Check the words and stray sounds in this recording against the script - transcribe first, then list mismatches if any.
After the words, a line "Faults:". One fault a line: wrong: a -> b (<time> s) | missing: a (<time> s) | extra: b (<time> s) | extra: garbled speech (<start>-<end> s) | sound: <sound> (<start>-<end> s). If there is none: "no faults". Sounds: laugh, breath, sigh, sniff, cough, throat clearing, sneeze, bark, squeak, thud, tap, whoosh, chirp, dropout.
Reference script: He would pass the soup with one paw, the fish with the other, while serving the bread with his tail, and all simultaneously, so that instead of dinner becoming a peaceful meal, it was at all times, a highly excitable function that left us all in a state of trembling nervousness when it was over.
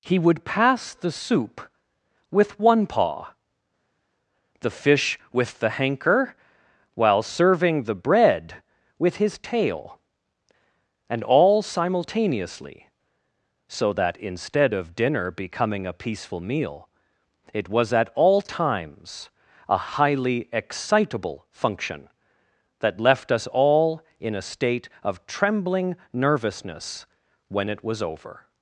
He would pass the soup with one paw, the fish with the hanker, while serving the bread with his tail, and all simultaneously, so that instead of dinner becoming a peaceful meal, it was at all times, a highly excitable function that left us all in a state of trembling nervousness when it was over.
Faults:
wrong: other -> hanker (5.7 s)